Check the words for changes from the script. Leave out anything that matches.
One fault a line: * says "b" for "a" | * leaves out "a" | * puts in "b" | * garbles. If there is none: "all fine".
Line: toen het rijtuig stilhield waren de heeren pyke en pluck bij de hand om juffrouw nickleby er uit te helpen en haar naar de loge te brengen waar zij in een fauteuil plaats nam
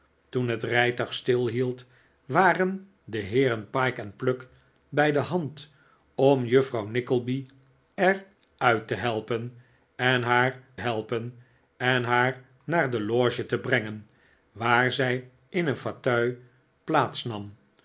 * puts in "helpen en haar"